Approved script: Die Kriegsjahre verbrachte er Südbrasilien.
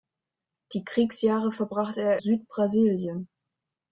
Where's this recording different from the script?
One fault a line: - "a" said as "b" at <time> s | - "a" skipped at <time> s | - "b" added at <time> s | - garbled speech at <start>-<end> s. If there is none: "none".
none